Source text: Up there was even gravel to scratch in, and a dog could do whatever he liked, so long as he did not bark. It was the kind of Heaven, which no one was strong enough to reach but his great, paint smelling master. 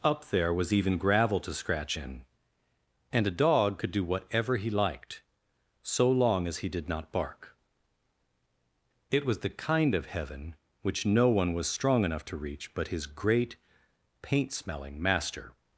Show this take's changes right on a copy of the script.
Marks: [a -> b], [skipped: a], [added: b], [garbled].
Up there was even gravel to scratch in, and a dog could do whatever he liked, so long as he did not bark. It was the kind of Heaven, which no one was strong enough to reach but his great, paint smelling master.